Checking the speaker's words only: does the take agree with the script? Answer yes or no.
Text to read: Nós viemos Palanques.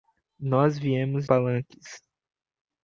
yes